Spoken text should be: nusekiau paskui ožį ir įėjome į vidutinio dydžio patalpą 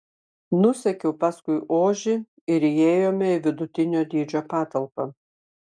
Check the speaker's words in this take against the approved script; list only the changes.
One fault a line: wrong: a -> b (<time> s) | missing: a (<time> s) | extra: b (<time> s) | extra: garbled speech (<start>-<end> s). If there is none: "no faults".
no faults